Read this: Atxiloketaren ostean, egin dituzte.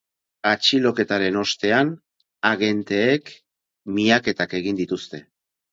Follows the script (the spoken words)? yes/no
no